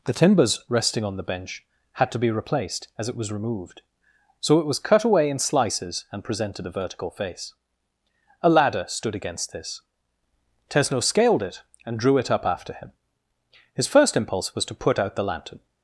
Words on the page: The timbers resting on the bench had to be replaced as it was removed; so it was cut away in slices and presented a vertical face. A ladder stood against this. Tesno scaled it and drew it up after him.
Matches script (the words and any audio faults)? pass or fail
fail